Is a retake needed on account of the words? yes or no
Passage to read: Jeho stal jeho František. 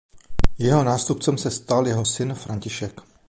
yes